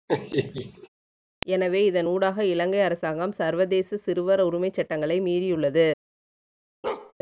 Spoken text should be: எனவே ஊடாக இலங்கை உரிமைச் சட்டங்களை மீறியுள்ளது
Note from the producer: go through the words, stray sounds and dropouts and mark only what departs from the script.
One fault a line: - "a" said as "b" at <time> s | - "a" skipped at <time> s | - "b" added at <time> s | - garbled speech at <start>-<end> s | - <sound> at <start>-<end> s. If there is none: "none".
- laugh at 0.1-0.9 s
- "இதன்" added at 1.8 s
- "அரசாங்கம் சர்வதேச சிறுவர்" added at 2.8 s
- bark at 6.8-7.1 s